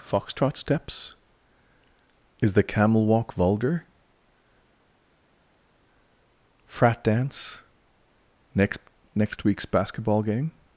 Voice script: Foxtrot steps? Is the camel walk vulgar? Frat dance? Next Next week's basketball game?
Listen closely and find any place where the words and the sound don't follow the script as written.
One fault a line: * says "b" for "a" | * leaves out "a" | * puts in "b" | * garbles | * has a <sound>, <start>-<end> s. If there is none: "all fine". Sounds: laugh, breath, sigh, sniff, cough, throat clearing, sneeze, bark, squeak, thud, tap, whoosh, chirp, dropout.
all fine